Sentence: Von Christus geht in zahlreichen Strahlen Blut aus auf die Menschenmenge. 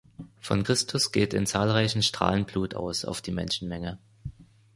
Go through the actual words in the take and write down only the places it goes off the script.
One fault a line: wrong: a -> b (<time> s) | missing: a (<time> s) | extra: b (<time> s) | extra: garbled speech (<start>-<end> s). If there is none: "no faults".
no faults